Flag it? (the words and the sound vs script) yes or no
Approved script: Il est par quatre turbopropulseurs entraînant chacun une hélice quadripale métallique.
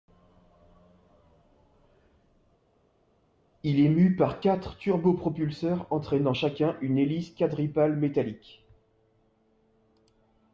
yes